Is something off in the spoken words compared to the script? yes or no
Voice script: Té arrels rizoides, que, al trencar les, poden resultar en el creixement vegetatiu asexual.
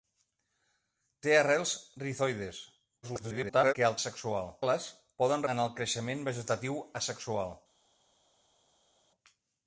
yes